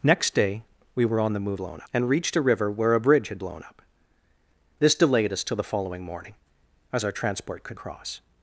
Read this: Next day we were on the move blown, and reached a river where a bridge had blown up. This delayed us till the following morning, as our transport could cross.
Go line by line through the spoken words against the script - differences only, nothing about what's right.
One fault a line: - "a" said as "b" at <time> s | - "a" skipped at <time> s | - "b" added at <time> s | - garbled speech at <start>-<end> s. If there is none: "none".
none